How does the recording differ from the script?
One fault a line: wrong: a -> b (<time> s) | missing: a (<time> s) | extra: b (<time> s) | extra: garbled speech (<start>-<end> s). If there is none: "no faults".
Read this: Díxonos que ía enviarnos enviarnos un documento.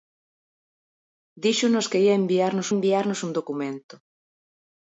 no faults